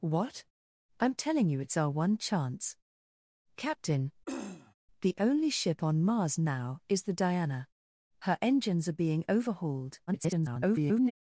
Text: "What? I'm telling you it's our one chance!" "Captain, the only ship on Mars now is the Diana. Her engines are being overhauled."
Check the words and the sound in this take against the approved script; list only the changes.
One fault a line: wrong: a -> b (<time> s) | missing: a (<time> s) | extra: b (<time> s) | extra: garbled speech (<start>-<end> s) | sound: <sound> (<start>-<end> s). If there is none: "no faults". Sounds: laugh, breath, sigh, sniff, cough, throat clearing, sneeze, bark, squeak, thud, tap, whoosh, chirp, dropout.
sound: throat clearing (4.3-4.7 s)
extra: garbled speech (10.1-11.1 s)